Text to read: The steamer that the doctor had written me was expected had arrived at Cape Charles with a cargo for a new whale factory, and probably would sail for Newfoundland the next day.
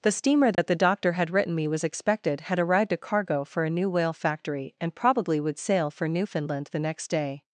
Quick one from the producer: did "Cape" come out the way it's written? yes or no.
no